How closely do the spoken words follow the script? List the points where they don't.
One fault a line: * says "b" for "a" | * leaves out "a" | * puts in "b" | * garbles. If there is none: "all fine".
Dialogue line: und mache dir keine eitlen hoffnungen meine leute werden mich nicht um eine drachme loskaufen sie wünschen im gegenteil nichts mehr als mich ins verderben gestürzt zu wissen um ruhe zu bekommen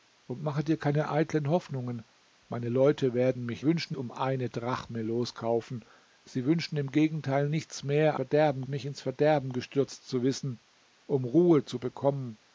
* says "wünschen" for "nicht"
* says "verderben" for "als"